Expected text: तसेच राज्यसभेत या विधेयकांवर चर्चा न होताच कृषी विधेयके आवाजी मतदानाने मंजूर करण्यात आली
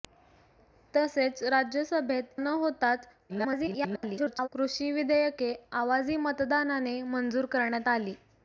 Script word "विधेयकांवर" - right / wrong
wrong